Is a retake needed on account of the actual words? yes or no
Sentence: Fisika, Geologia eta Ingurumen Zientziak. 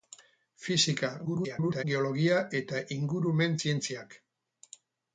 yes